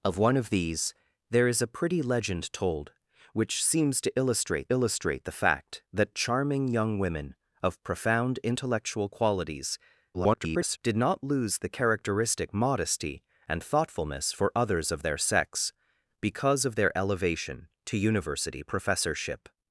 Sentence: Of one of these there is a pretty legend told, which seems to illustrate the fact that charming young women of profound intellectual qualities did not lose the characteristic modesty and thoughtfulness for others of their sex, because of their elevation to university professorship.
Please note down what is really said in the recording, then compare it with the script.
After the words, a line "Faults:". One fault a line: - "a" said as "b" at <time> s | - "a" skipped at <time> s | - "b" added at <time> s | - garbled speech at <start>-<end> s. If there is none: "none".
Of one of these there is a pretty legend told, which seems to illustrate illustrate the fact that charming young women of profound intellectual qualities [garbled] did not lose the characteristic modesty and thoughtfulness for others of their sex, because of their elevation to university professorship.
Faults:
- "illustrate" added at 4.7 s
- garbled speech at 10.1-10.8 s